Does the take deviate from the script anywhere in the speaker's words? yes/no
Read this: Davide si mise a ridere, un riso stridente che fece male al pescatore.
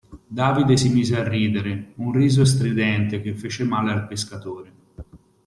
no